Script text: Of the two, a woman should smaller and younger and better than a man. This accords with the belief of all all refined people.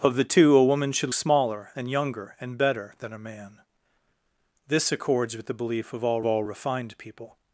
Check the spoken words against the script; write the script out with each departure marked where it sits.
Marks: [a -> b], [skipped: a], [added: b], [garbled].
Of the two, a woman should smaller and younger and better than a man. This accords with the belief of all all refined people.